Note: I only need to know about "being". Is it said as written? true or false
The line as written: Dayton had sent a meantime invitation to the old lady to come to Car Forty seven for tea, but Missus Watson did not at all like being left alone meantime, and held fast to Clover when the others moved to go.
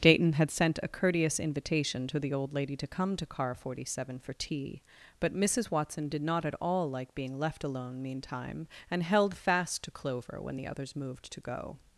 true